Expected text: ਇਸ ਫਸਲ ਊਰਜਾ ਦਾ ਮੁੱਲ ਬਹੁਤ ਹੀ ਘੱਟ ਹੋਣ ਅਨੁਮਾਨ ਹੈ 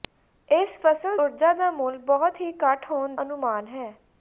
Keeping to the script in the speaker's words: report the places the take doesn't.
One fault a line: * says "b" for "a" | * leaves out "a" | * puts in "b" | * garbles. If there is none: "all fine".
all fine